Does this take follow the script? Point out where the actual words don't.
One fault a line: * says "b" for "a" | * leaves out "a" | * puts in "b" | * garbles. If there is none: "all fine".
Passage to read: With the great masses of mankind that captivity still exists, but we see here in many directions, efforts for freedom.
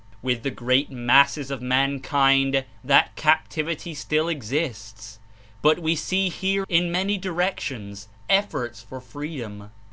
all fine